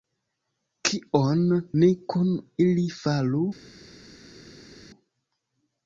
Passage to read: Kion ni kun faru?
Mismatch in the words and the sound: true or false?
true